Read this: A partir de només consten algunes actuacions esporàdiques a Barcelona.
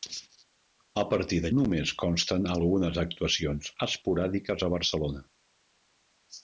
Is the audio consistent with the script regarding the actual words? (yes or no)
yes